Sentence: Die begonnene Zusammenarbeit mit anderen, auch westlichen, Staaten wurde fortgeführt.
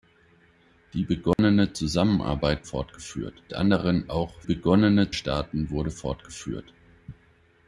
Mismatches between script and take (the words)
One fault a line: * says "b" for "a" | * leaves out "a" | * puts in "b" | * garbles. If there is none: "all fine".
* says "fortgeführt" for "mit"
* says "begonnene" for "westlichen"